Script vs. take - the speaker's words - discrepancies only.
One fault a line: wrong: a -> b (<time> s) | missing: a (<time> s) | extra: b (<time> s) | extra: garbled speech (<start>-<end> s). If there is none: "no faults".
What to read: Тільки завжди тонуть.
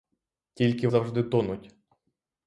no faults